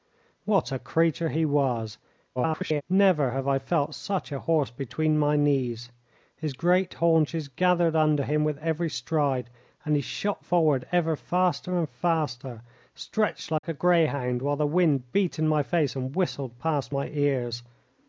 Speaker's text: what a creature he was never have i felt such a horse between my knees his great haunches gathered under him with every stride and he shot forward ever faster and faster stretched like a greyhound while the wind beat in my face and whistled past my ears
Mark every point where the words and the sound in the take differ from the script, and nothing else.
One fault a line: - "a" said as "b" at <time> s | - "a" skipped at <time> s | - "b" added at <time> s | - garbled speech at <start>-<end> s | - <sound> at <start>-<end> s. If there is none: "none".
- garbled speech at 2.4-2.8 s
- dropout at 13.6-13.6 s